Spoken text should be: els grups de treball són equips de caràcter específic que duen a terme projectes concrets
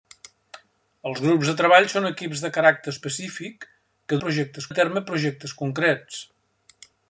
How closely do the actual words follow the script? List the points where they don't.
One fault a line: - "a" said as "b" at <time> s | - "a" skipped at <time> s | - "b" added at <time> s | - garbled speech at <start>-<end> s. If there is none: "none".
- "duen" said as "projectes" at 4.2 s